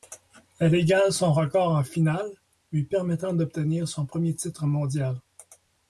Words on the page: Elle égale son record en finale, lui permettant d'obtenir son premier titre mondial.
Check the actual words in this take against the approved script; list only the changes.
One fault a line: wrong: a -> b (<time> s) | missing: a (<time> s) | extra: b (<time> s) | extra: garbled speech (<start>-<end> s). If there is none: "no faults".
no faults